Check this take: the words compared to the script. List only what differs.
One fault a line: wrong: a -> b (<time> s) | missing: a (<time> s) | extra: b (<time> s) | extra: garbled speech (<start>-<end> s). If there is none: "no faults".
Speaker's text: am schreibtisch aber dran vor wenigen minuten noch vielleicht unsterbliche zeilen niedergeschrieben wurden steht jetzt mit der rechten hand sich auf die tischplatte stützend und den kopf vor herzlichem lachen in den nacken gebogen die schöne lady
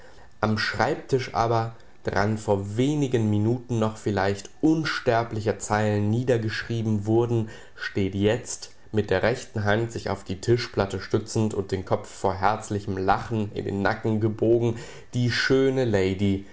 no faults